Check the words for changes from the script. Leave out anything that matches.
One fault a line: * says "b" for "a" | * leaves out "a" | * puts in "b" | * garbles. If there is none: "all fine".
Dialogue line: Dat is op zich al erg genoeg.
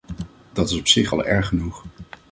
all fine